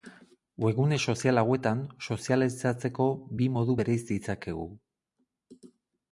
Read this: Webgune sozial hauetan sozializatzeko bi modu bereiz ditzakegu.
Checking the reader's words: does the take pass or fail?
pass